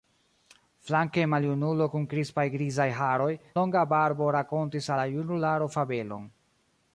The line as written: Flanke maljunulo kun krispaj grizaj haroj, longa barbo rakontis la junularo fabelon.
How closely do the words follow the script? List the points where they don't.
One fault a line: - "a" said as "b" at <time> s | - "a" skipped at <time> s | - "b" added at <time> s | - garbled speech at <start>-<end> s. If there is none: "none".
none